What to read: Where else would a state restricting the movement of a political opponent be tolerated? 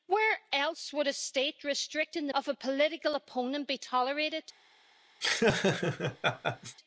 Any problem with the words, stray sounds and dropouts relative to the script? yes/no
yes